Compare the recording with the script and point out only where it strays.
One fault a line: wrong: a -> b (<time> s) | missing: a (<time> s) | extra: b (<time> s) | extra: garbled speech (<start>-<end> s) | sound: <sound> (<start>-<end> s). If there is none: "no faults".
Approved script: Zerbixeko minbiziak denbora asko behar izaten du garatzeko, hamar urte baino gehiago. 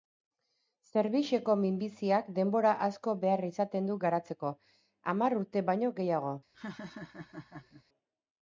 sound: laugh (6.5-7.8 s)